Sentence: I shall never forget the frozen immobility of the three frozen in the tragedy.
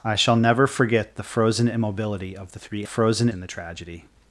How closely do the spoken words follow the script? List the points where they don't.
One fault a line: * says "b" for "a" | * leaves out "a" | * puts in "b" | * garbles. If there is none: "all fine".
all fine